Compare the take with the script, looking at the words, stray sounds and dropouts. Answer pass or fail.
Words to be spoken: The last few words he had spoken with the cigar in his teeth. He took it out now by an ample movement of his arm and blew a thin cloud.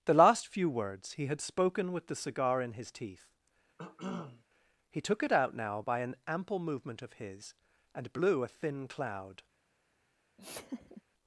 fail